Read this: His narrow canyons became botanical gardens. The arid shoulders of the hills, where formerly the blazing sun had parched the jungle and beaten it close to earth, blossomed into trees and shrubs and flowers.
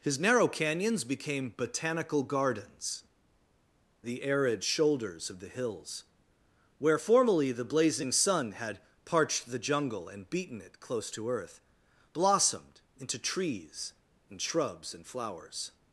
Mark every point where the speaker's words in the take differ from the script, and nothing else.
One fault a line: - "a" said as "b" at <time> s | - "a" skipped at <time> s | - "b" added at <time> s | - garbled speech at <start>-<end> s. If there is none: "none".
none